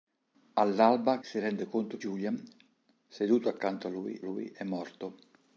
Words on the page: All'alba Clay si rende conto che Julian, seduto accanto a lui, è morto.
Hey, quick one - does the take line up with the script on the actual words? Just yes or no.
no